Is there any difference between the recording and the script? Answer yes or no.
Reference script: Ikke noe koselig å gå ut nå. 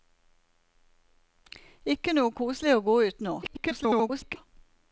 yes